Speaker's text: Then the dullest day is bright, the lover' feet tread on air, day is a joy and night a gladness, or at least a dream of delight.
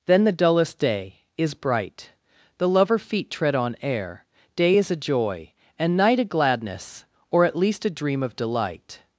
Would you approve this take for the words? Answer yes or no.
yes